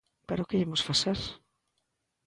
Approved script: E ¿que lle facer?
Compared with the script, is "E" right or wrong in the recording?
wrong